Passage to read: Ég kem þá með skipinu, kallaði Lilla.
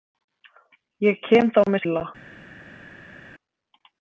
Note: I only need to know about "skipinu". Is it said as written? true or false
false